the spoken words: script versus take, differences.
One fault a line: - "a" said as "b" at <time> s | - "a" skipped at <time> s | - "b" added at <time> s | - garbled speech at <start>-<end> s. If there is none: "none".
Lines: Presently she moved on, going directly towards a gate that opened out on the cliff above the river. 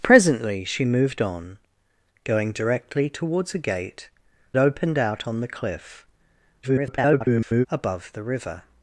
- "that" skipped at 4.1 s
- garbled speech at 6.6-7.7 s